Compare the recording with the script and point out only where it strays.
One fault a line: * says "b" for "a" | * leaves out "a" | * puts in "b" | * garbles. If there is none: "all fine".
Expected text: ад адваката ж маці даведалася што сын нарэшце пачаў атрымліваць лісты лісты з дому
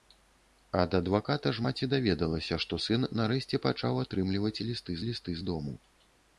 all fine